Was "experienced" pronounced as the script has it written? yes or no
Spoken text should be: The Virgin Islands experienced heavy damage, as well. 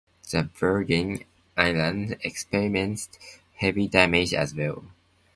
yes